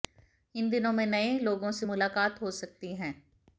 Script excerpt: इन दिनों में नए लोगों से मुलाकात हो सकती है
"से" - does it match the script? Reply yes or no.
yes